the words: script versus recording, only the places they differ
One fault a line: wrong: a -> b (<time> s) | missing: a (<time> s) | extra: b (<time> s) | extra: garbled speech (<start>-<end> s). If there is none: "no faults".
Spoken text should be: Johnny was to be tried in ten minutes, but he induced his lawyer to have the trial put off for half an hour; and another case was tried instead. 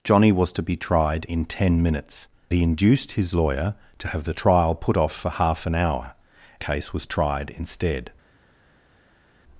missing: but (2.3 s)
missing: and another (6.1 s)